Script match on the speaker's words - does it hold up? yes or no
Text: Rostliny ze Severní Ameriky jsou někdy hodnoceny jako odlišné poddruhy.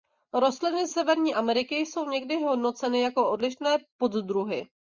no